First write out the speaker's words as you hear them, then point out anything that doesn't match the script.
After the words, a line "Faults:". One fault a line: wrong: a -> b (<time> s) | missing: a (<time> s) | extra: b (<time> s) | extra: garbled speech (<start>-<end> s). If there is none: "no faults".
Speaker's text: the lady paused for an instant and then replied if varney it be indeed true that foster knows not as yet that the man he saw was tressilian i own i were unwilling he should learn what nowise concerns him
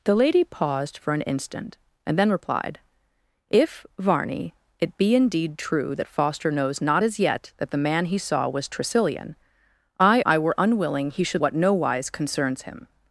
the lady paused for an instant and then replied if varney it be indeed true that foster knows not as yet that the man he saw was tressilian i i were unwilling he should what nowise concerns him
Faults:
missing: own (10.2 s)
missing: learn (11.4 s)